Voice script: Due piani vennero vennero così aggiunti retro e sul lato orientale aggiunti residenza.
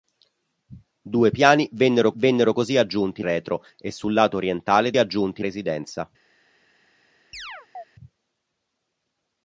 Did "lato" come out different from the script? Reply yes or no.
no